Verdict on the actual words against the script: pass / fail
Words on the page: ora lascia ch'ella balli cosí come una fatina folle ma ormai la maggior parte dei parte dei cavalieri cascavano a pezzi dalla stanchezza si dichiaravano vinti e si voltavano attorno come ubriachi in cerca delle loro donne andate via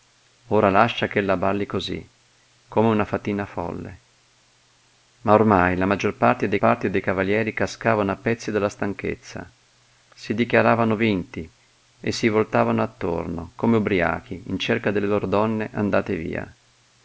pass